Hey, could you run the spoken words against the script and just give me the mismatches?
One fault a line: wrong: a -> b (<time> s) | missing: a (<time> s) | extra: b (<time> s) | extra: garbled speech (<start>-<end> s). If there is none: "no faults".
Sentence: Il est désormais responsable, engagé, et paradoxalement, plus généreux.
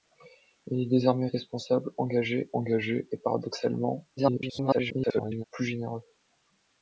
extra: engagé (2.5 s)
extra: garbled speech (4.2-5.4 s)